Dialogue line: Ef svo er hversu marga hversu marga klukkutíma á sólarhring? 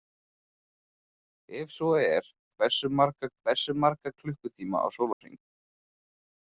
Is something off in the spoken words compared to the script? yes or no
no